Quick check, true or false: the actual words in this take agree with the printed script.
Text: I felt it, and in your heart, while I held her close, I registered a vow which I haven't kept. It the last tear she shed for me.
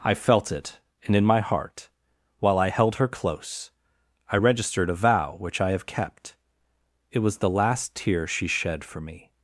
false